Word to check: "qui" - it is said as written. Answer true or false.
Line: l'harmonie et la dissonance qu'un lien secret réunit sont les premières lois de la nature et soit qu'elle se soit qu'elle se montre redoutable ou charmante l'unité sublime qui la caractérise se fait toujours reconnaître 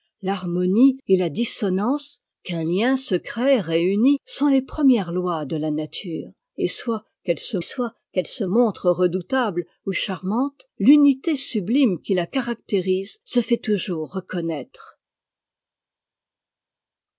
true